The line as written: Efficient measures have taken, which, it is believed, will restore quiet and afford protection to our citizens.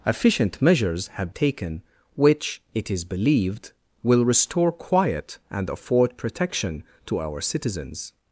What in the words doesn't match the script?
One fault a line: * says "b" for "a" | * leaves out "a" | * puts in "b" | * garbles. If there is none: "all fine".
all fine